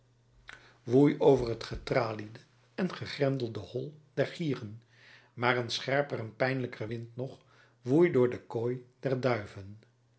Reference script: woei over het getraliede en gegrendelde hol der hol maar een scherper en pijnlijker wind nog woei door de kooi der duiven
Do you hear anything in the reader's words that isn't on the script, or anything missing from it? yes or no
yes